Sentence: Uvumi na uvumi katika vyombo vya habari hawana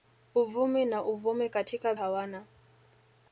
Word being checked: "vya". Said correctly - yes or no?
no